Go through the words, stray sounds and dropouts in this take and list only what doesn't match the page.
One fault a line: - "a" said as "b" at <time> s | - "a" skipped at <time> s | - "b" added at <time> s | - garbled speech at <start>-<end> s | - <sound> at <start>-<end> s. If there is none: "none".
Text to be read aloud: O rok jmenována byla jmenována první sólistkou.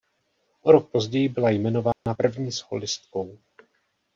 - "jmenována" said as "později" at 0.9 s
- dropout at 1.9-2.1 s